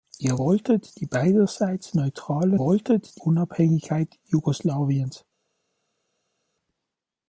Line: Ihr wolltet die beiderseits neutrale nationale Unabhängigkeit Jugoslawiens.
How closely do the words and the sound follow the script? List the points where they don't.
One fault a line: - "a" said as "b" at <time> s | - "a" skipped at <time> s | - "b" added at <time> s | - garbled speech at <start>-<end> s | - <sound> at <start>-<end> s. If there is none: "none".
- "nationale" said as "wolltet" at 2.6 s